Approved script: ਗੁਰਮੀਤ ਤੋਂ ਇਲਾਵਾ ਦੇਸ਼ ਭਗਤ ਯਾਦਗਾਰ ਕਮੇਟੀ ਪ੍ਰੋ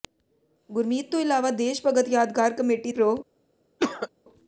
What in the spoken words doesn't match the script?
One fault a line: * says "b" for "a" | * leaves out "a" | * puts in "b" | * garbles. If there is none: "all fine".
all fine